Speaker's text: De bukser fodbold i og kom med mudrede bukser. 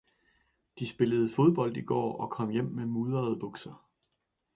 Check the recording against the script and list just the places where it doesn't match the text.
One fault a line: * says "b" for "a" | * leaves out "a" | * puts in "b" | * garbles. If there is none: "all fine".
* says "spillede" for "bukser"
* puts in "går"
* puts in "hjem"